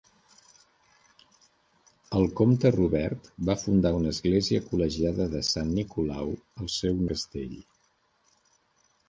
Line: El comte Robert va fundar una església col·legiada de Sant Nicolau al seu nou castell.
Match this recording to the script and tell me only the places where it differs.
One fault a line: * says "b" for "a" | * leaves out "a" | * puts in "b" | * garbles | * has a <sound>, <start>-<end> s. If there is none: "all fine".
* leaves out "nou"